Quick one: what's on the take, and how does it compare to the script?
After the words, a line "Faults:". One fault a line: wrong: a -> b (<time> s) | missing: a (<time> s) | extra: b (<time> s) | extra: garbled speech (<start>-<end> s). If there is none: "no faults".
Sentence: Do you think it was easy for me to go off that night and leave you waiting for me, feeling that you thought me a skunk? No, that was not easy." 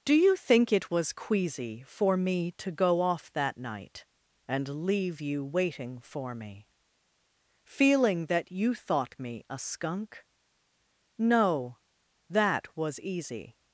Do you think it was queasy for me to go off that night and leave you waiting for me, feeling that you thought me a skunk? No, that was easy."
Faults:
wrong: easy -> queasy (1.1 s)
missing: not (13.0 s)